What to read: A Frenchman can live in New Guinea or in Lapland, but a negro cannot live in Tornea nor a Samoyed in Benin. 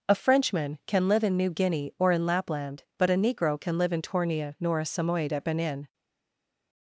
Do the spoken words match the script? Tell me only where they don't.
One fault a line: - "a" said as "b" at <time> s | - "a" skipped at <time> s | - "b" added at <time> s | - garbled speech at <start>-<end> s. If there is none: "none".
- "cannot" said as "can" at 3.6 s
- "in" said as "at" at 5.3 s